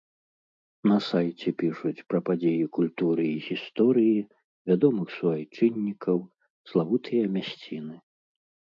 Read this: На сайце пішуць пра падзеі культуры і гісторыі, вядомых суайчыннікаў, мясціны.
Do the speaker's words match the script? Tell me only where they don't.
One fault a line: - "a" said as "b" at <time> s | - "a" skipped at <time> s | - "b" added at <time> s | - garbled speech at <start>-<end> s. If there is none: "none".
- "славутыя" added at 6.8 s